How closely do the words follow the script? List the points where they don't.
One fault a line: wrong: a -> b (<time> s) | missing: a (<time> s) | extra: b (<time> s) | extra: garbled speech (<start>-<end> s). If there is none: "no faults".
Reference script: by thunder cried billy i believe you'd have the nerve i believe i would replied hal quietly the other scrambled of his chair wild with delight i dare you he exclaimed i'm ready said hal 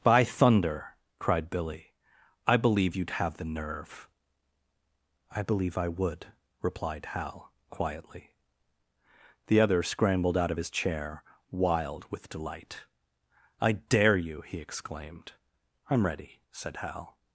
extra: out (10.4 s)